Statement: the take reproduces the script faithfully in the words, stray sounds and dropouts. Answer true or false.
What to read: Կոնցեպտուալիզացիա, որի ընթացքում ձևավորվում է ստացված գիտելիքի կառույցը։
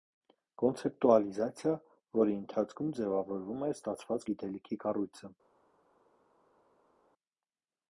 true